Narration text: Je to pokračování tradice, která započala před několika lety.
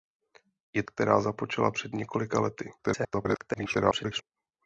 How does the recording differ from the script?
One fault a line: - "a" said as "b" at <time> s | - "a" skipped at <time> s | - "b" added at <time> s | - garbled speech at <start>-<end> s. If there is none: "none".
- "to pokračování tradice" skipped at 0.8 s
- garbled speech at 2.8-4.2 s